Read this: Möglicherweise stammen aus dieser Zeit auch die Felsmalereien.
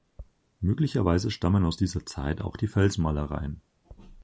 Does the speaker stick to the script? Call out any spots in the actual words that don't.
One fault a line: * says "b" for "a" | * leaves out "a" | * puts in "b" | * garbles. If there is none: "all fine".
all fine